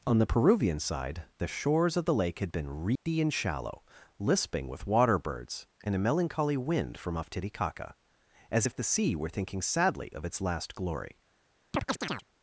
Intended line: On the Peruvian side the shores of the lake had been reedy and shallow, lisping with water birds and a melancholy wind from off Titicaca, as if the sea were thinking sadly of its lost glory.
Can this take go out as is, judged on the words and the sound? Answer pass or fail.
fail